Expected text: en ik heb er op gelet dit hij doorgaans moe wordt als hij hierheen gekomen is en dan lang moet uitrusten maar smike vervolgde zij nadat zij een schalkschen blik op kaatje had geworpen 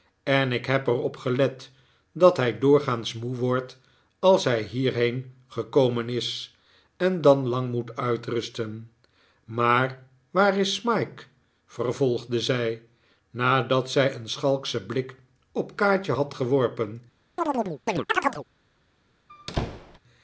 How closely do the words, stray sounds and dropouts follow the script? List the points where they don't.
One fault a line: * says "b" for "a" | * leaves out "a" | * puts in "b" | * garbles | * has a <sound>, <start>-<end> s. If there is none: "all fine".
* says "dat" for "dit"
* puts in "waar is"
* has a chirp, 17.4-18.4 s
* has a squeak, 19.3-20.0 s